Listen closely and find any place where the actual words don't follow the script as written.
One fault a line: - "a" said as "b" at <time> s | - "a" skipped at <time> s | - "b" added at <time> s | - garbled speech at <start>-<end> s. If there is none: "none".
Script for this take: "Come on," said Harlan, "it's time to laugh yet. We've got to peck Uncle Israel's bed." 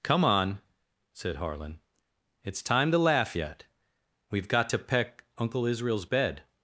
none